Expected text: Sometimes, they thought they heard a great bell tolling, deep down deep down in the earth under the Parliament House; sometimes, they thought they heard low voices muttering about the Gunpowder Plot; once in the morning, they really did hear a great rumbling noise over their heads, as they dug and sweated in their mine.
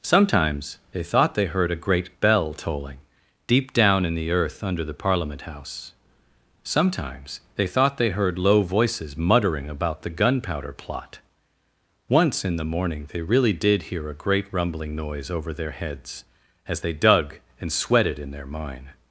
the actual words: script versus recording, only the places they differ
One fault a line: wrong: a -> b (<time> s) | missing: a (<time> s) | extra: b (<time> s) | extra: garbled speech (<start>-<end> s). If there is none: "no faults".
missing: deep down (4.0 s)